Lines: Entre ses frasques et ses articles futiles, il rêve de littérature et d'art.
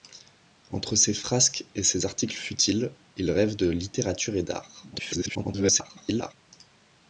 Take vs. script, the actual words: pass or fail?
fail